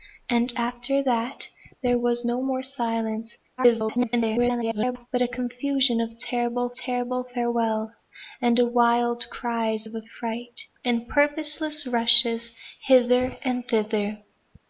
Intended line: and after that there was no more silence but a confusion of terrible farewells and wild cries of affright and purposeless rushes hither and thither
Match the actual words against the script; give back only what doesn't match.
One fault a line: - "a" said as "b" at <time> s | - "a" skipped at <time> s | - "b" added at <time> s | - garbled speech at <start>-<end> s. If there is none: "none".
- garbled speech at 3.6-5.1 s
- "terrible" added at 6.7 s